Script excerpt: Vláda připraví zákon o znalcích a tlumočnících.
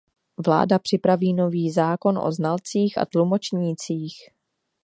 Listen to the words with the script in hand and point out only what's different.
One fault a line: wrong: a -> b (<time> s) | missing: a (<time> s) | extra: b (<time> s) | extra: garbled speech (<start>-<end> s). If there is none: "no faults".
extra: nový (1.3 s)